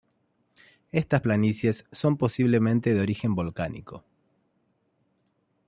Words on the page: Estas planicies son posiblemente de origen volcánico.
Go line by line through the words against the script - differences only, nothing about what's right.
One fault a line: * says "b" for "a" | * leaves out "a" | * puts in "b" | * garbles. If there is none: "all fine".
all fine